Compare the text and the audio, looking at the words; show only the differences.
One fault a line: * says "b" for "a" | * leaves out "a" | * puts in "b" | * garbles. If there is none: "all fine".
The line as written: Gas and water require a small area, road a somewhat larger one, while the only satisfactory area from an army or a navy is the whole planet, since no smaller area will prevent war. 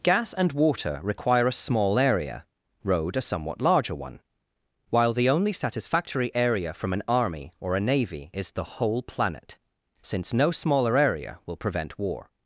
all fine